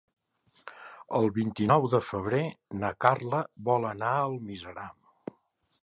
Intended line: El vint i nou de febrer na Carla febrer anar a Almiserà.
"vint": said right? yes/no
yes